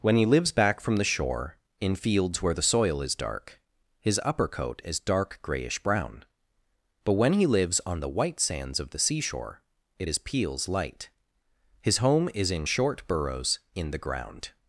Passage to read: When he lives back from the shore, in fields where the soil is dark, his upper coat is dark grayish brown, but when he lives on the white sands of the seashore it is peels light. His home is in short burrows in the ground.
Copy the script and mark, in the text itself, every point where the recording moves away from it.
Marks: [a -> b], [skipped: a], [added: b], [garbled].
When he lives back from the shore, in fields where the soil is dark, his upper coat is dark grayish brown, but when he lives on the white sands of the seashore it is peels light. His home is in short burrows in the ground.